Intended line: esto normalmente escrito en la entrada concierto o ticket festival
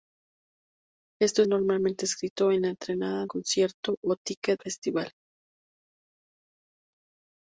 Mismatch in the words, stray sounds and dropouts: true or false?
false